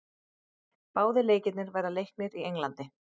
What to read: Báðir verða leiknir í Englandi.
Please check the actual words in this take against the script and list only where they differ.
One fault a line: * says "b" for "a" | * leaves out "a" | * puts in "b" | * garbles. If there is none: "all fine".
* puts in "leikirnir"